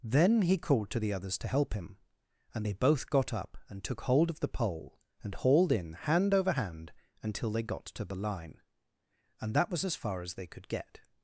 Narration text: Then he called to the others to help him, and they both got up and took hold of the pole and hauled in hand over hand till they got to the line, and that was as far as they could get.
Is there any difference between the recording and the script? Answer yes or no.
yes